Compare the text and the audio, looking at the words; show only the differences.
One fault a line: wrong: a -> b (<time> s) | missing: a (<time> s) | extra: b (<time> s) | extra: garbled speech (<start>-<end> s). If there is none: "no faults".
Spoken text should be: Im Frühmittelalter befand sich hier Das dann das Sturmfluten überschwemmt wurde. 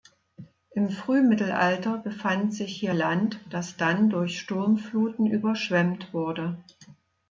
extra: Land (2.9 s)
wrong: das -> durch (4.1 s)